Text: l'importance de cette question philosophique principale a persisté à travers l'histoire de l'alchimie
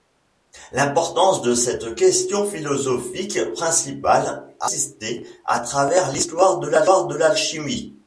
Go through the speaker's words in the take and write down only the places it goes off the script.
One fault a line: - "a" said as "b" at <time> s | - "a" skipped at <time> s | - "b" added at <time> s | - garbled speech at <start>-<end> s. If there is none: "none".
none